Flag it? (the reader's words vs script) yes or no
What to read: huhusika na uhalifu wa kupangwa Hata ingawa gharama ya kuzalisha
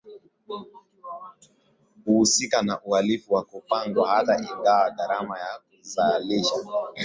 no